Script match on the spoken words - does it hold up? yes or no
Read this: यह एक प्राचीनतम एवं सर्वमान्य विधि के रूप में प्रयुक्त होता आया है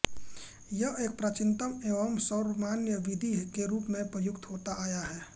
yes